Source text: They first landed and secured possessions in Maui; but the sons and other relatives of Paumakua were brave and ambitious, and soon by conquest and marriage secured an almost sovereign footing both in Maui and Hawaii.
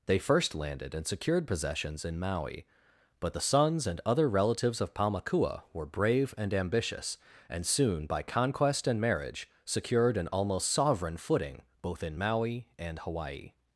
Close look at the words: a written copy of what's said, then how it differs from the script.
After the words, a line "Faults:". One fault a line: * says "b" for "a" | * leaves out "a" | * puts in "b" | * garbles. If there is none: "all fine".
They first landed and secured possessions in Maui; but the sons and other relatives of Paumakua were brave and ambitious, and soon by conquest and marriage secured an almost sovereign footing both in Maui and Hawaii.
Faults:
all fine